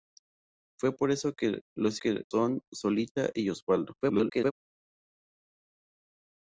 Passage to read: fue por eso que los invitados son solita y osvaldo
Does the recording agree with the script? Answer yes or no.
no